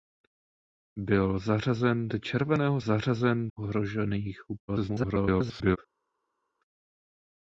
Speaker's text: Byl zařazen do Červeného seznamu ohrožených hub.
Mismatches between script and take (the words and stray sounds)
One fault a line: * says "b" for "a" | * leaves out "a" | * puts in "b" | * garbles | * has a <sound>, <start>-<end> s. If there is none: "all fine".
* says "zařazen" for "seznamu"
* garbles